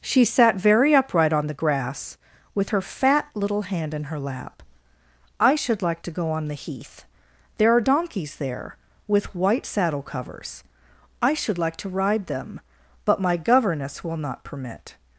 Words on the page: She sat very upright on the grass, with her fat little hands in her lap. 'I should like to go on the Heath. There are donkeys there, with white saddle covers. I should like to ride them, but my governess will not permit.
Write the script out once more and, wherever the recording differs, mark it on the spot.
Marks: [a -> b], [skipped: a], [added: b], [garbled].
She sat very upright on the grass, with her fat little [hands -> hand] in her lap. 'I should like to go on the Heath. There are donkeys there, with white saddle covers. I should like to ride them, but my governess will not permit.